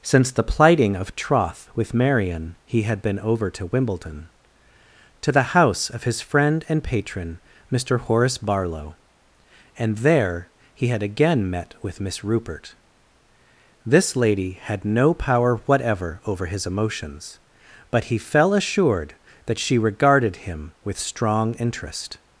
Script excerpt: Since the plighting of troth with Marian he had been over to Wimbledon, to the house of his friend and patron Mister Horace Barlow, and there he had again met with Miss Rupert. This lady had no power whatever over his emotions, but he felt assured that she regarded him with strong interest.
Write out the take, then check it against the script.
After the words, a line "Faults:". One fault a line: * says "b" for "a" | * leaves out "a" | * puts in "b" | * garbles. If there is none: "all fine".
Since the plighting of troth with Marian he had been over to Wimbledon, to the house of his friend and patron Mister Horace Barlow, and there he had again met with Miss Rupert. This lady had no power whatever over his emotions, but he fell assured that she regarded him with strong interest.
Faults:
* says "fell" for "felt"